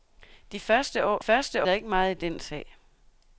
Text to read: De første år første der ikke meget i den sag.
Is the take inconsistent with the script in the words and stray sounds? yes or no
no